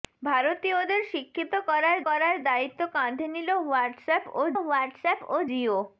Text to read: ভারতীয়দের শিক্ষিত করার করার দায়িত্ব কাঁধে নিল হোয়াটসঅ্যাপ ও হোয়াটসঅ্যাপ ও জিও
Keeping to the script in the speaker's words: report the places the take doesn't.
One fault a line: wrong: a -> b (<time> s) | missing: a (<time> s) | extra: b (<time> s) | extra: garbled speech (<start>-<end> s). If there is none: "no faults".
no faults